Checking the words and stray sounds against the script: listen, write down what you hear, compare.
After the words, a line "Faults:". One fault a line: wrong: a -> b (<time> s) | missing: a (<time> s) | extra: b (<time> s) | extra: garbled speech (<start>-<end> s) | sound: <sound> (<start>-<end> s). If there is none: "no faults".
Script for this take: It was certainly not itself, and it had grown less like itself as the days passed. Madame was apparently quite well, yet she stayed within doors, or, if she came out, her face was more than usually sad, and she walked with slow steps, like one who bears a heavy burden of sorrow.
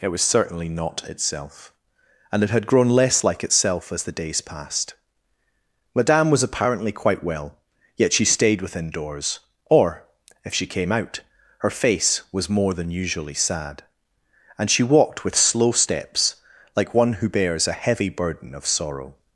It was certainly not itself, and it had grown less like itself as the days passed. Madame was apparently quite well, yet she stayed within doors, or, if she came out, her face was more than usually sad, and she walked with slow steps, like one who bears a heavy burden of sorrow.
Faults:
no faults